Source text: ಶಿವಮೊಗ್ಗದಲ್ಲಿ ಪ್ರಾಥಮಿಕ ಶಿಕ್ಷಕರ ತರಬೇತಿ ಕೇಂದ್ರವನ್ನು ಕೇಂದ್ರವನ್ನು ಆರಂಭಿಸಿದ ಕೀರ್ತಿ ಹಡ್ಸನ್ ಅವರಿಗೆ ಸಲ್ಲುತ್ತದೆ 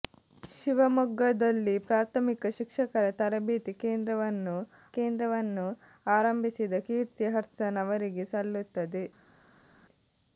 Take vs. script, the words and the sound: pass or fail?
pass